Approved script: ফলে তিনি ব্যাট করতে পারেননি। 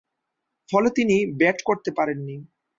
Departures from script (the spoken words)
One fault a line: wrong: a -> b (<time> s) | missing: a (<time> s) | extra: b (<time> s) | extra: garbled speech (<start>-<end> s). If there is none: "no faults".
no faults